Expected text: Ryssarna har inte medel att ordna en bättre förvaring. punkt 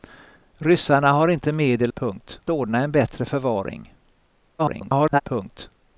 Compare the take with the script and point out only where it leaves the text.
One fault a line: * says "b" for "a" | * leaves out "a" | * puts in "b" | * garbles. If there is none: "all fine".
* says "punkt" for "att"
* garbles